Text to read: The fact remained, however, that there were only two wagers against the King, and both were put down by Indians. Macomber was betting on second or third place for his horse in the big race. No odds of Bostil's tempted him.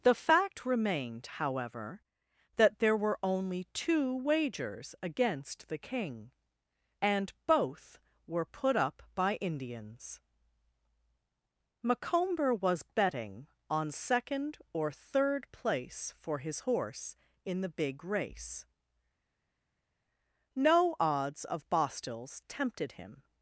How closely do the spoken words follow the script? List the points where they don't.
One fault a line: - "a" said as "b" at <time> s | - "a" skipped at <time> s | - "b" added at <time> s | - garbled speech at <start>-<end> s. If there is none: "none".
- "down" said as "up" at 8.8 s